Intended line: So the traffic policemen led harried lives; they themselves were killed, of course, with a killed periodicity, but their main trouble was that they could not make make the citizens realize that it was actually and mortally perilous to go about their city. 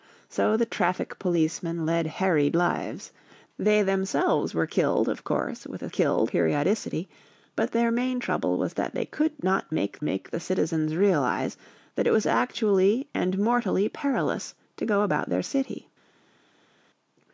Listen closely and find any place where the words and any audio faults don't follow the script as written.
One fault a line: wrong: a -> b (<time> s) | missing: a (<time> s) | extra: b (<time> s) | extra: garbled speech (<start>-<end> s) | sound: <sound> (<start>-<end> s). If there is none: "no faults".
no faults